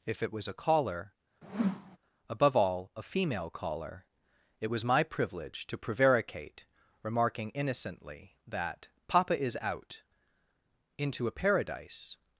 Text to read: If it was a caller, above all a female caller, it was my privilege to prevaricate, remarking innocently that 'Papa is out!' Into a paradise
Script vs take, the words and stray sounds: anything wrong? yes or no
yes